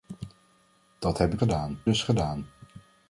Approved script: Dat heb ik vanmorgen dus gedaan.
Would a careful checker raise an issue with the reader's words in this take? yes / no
yes